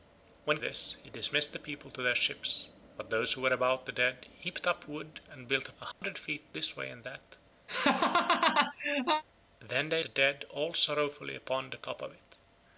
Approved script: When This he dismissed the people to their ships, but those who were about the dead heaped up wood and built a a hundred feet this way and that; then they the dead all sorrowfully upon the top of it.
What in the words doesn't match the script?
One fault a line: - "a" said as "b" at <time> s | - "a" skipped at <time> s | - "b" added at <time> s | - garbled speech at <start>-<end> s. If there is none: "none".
none